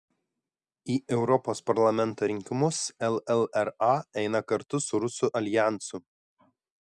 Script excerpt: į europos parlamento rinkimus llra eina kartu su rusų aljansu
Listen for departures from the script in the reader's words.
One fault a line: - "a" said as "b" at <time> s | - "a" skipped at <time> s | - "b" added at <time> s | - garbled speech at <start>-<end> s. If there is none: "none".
none